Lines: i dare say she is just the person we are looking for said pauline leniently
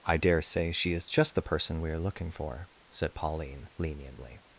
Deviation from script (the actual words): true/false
false